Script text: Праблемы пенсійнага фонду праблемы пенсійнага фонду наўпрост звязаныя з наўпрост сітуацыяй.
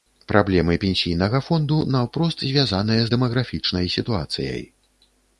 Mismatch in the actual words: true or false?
true